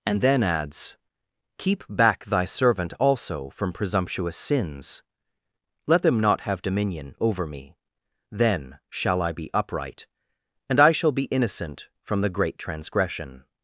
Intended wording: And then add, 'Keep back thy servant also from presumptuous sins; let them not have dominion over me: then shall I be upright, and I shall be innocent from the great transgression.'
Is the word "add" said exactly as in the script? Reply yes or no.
no